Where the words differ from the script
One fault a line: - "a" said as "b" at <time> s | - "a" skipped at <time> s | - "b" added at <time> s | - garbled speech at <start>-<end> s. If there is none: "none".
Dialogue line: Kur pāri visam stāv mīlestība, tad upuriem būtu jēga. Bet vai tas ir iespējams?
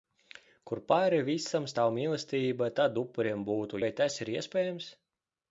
- "jēga Bet" skipped at 3.8 s